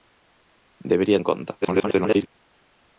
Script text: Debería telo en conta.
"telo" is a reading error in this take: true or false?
true